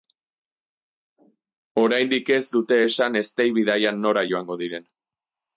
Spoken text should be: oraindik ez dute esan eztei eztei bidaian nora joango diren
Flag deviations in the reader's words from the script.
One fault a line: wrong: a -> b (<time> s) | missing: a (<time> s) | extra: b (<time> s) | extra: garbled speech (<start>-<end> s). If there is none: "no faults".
missing: eztei (3.5 s)